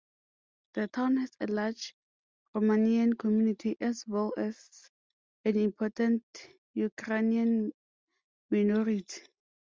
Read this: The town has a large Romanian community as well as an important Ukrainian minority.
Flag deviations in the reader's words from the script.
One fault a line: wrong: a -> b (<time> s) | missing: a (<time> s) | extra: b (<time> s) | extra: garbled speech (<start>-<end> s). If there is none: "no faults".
no faults